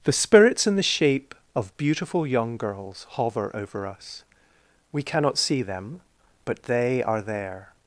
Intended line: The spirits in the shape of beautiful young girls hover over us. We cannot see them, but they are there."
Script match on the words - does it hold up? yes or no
yes